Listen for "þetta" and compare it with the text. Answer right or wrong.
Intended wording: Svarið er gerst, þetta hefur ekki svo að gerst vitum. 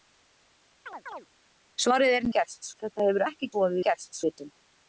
right